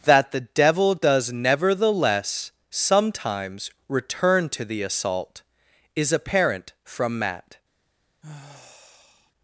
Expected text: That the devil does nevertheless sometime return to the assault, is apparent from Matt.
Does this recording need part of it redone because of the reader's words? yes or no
yes